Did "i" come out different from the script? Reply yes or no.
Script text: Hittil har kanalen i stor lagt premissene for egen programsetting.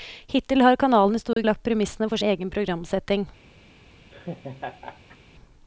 no